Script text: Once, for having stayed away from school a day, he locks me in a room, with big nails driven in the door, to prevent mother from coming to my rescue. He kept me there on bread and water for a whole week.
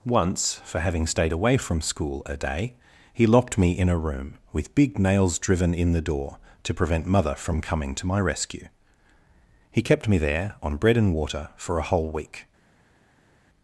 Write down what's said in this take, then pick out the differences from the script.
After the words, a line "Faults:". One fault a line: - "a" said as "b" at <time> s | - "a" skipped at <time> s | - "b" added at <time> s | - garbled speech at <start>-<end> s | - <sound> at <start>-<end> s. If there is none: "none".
Once, for having stayed away from school a day, he locked me in a room, with big nails driven in the door, to prevent mother from coming to my rescue. He kept me there on bread and water for a whole week.
Faults:
- "locks" said as "locked" at 3.3 s